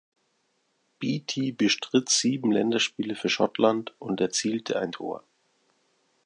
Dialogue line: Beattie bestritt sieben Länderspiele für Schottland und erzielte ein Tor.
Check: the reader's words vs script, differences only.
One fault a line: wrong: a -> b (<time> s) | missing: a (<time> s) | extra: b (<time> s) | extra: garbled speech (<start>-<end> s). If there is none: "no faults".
no faults